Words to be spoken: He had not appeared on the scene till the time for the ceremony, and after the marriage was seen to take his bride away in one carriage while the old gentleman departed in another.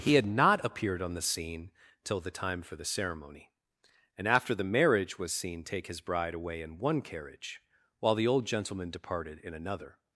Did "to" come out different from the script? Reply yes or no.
yes